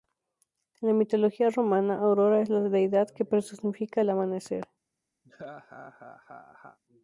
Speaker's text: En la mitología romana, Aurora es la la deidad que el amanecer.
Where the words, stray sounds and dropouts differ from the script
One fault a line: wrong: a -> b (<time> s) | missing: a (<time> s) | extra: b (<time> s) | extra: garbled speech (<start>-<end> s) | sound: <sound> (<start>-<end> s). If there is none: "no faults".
missing: la (2.6 s)
extra: personifica (3.2 s)
sound: laugh (5.2-6.8 s)